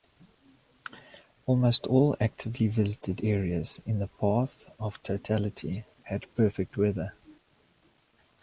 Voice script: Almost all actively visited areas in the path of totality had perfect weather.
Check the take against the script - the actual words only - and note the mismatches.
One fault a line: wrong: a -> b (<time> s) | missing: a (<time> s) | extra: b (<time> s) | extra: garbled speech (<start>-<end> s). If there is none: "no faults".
no faults